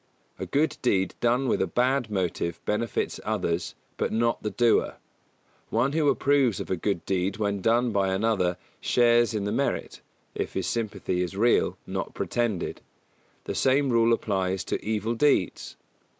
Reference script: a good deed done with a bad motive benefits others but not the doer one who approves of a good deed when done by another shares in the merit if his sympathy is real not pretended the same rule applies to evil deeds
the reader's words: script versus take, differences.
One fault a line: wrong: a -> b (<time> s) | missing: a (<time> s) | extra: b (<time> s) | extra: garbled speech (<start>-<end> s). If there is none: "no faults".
no faults